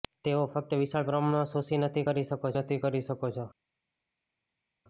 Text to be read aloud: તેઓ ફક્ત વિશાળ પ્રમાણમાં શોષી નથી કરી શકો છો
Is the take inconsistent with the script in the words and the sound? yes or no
yes